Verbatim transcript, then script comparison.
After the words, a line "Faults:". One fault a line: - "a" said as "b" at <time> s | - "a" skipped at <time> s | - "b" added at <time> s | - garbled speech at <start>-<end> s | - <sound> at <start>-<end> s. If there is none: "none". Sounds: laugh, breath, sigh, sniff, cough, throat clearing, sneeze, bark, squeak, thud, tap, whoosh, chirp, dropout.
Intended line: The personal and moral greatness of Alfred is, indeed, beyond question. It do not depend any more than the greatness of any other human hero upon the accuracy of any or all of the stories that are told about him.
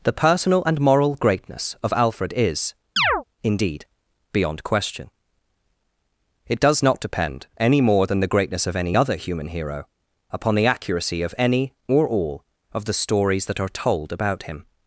The personal and moral greatness of Alfred is, indeed, beyond question. It does not depend any more than the greatness of any other human hero upon the accuracy of any or all of the stories that are told about him.
Faults:
- chirp at 3.0-3.2 s
- "do" said as "does" at 6.6 s